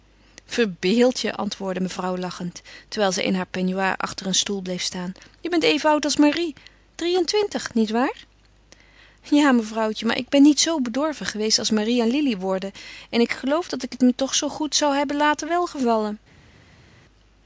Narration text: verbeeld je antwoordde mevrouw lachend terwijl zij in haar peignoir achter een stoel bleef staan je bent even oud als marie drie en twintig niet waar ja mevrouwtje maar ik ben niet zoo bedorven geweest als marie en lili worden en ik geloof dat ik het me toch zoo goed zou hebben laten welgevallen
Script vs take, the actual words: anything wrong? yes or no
no